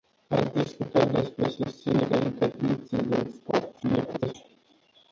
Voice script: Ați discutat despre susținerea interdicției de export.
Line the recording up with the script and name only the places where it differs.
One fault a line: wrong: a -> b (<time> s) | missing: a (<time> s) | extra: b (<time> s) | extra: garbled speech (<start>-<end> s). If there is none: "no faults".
extra: garbled speech (3.8-4.3 s)